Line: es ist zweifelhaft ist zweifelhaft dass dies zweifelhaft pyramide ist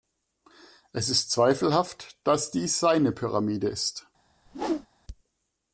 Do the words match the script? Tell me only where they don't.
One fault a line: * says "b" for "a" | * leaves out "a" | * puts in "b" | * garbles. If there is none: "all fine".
* leaves out "ist zweifelhaft"
* says "seine" for "zweifelhaft"